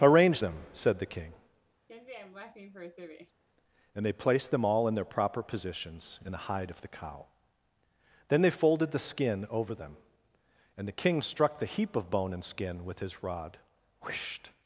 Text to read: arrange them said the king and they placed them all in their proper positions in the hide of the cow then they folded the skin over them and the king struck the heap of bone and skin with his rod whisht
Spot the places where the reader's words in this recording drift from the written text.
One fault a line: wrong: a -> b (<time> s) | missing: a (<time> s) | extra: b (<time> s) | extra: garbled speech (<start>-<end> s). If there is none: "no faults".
no faults